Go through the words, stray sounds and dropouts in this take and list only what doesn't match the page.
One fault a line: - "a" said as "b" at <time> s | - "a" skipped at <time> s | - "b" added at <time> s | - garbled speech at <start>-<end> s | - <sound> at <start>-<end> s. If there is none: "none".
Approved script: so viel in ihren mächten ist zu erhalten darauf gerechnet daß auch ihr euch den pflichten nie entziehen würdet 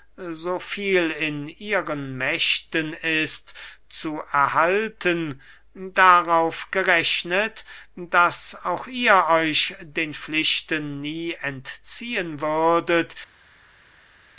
none